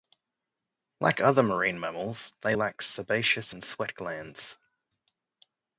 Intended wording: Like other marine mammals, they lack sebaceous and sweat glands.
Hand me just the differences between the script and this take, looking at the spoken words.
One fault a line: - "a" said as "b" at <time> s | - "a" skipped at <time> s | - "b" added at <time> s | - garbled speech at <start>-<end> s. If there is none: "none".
none